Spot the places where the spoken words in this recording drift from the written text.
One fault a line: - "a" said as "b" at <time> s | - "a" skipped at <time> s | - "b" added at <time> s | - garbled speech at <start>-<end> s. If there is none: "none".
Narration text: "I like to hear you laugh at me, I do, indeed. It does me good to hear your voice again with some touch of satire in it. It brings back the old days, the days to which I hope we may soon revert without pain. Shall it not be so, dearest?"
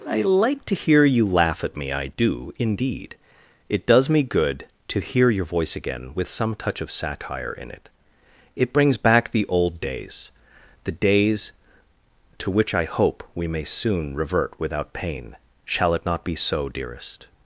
none